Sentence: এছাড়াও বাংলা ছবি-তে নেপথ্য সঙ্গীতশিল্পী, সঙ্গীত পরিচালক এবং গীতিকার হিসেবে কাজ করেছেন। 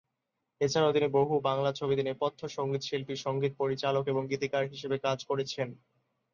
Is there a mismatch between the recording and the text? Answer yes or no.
yes